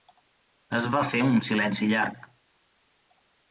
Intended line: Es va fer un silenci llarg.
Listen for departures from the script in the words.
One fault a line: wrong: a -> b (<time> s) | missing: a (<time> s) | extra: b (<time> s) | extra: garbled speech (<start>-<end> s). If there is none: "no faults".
no faults